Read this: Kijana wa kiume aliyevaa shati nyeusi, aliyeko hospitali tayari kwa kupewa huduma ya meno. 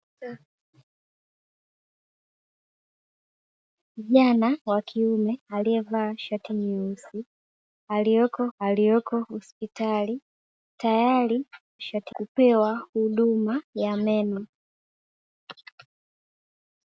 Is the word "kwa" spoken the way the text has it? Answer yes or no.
no